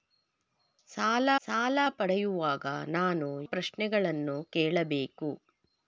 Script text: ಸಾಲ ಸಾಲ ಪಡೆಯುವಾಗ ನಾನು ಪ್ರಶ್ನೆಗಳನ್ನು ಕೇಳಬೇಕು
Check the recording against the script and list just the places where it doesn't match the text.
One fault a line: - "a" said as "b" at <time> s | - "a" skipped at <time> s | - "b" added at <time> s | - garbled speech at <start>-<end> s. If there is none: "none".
none